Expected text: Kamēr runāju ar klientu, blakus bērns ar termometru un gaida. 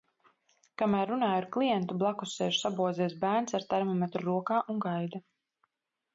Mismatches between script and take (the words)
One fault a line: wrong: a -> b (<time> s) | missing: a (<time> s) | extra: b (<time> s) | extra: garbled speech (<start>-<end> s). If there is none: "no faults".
extra: sēž sabozies (2.4 s)
extra: rokā (4.3 s)